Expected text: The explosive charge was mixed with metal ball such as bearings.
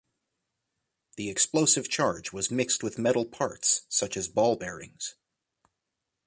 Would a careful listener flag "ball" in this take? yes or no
yes